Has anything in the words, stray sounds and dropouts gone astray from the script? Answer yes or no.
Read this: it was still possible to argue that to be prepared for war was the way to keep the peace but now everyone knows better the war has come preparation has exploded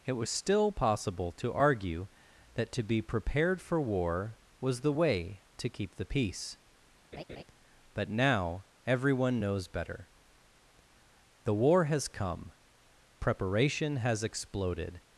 yes